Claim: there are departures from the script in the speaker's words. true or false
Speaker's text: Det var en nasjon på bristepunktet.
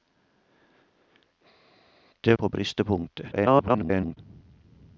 true